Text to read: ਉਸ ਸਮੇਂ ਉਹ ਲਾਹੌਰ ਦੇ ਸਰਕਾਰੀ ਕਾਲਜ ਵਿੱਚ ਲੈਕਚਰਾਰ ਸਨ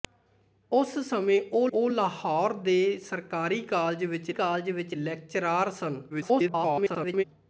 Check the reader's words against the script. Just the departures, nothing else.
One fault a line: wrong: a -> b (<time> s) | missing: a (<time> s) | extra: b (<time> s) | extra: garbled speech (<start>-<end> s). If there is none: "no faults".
extra: ਉਹ (1.7 s)
extra: ਕਾਲਜ ਵਿੱਚ (4.3 s)
extra: garbled speech (6.1-7.2 s)